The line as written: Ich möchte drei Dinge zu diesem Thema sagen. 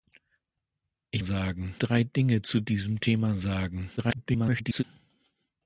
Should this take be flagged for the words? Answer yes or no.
yes